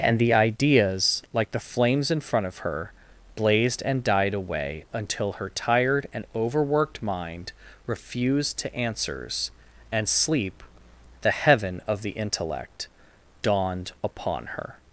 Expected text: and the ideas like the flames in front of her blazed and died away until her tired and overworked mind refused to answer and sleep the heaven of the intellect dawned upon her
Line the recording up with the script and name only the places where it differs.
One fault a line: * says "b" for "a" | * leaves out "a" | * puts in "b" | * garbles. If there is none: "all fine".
* says "answers" for "answer"